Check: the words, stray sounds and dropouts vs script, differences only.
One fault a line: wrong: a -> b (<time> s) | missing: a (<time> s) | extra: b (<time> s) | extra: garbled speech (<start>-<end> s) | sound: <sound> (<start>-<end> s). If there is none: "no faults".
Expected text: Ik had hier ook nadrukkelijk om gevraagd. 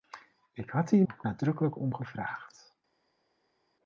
no faults